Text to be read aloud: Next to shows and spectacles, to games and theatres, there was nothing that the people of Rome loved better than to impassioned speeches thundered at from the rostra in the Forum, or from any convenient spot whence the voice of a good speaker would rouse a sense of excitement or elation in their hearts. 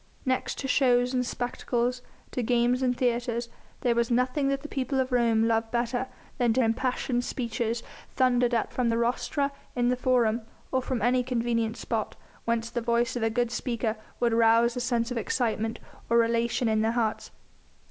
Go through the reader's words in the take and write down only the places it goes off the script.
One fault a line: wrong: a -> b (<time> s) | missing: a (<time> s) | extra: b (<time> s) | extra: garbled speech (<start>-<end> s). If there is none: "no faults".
no faults